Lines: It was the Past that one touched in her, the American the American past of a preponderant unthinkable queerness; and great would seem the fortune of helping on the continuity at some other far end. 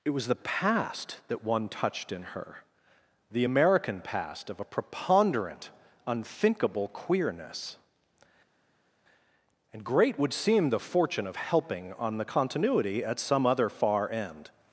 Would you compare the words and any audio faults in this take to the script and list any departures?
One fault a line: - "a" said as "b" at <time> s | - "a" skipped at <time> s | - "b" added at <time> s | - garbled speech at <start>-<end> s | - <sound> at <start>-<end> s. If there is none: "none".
- "the American" skipped at 4.0 s